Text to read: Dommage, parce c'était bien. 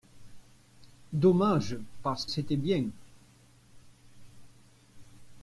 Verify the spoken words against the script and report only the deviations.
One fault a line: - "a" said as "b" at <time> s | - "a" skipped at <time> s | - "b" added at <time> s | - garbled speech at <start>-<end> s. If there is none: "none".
none